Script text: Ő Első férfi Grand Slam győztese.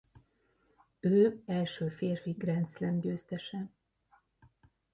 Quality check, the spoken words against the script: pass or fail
pass